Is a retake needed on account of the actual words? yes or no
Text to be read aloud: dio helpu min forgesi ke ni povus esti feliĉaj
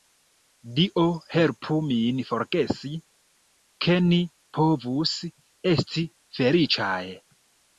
no